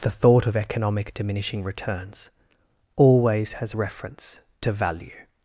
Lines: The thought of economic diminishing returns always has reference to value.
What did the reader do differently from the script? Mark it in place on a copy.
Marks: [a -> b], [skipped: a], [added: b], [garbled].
The thought of economic diminishing returns always has reference to value.